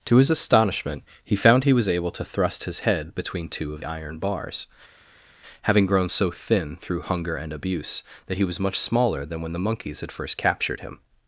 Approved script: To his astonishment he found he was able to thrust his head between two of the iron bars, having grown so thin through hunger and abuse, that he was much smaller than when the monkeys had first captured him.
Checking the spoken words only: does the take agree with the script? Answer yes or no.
no